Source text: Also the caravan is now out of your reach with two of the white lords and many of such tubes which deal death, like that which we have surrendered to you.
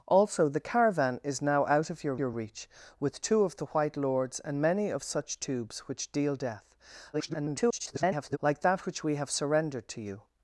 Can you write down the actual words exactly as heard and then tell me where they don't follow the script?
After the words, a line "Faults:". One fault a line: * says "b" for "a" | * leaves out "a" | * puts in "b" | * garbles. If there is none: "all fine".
Also the caravan is now out of your your reach with two of the white lords and many of such tubes which deal death, [garbled] like that which we have surrendered to you.
Faults:
* puts in "your"
* garbles